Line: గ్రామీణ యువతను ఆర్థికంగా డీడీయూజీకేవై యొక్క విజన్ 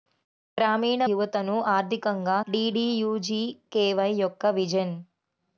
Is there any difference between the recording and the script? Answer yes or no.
no